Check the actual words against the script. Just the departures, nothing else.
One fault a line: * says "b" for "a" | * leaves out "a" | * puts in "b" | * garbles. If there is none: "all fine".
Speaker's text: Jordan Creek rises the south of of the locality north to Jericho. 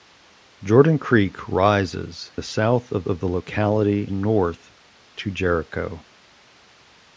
all fine